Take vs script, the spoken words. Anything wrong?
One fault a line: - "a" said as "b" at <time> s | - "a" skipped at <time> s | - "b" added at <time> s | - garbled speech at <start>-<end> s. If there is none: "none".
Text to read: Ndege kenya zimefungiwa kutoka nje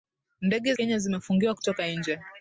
none